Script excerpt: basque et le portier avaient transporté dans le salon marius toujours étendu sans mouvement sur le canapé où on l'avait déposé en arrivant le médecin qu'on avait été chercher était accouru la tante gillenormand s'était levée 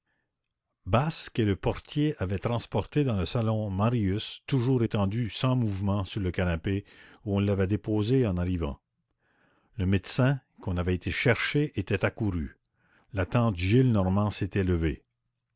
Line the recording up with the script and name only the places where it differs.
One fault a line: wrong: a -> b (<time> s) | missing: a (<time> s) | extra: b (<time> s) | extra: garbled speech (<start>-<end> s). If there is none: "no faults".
no faults